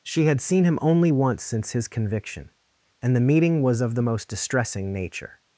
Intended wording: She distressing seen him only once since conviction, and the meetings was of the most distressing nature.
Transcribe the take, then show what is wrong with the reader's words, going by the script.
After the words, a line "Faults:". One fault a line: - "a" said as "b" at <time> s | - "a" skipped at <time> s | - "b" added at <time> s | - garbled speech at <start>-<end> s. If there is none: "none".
She had seen him only once since his conviction, and the meeting was of the most distressing nature.
Faults:
- "distressing" said as "had" at 0.2 s
- "his" added at 1.7 s
- "meetings" said as "meeting" at 3.2 s